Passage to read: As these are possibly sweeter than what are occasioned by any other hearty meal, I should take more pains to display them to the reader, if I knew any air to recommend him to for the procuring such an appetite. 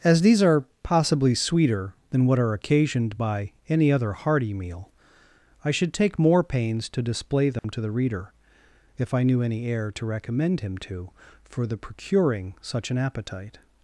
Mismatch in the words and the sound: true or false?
true